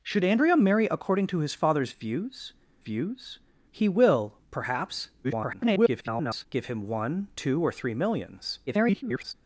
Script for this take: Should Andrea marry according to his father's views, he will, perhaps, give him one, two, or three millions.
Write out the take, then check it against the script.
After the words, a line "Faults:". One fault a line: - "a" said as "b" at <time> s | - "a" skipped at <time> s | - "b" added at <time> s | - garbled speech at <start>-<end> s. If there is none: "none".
Should Andrea marry according to his father's views views, he will, perhaps, [garbled] give him one, two, or three millions. [garbled]
Faults:
- "views" added at 2.8 s
- garbled speech at 5.2-6.5 s
- garbled speech at 8.7-9.3 s